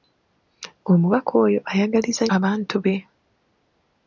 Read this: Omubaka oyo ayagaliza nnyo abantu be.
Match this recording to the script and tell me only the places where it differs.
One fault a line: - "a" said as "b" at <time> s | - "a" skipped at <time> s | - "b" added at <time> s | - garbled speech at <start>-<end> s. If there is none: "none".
- "nnyo" skipped at 2.2 s